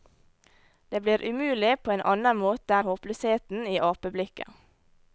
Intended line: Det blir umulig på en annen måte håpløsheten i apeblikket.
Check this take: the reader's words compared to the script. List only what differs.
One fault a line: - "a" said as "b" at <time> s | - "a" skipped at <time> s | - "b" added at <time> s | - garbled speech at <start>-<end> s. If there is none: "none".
none